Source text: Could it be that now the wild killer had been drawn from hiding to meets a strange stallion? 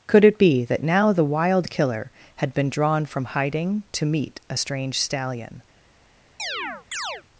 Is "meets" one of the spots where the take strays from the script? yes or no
yes